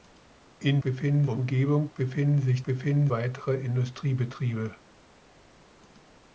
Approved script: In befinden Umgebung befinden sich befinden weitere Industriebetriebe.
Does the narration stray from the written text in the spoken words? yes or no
no